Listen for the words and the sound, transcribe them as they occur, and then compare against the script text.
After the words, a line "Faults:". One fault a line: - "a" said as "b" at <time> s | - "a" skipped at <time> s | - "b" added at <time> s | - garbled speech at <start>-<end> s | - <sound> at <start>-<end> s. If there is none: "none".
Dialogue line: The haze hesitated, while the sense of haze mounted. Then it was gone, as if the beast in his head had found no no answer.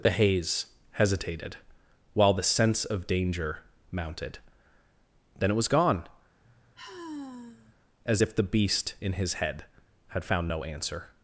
The haze hesitated, while the sense of danger mounted. Then it was gone, as if the beast in his head had found no answer.
Faults:
- "haze" said as "danger" at 3.0 s
- sigh at 6.4-7.8 s
- "no" skipped at 10.6 s